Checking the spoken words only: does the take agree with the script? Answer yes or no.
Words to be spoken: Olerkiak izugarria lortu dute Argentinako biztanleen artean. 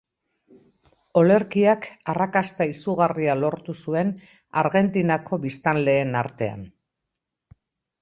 no